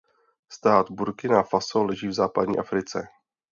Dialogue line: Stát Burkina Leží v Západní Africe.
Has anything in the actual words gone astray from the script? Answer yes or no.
yes